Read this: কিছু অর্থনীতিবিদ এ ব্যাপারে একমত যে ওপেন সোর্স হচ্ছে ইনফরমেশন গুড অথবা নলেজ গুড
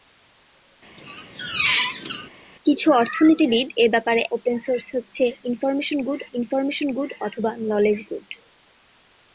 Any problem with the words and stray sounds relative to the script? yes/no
yes